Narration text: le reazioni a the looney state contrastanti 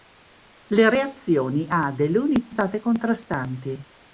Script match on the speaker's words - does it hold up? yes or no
yes